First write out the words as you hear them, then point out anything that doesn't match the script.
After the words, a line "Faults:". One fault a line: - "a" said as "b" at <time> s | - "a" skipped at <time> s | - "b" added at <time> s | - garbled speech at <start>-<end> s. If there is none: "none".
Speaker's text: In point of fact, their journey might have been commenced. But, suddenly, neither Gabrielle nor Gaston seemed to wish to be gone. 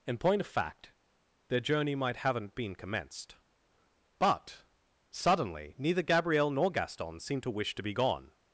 In point of fact, their journey might haven't been commenced. But, suddenly, neither Gabrielle nor Gaston seemed to wish to be gone.
Faults:
- "have" said as "haven't" at 2.2 s